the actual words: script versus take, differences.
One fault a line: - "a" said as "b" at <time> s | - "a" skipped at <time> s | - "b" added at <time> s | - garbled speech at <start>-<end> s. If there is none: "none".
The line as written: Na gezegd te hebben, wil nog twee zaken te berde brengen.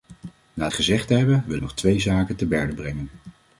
none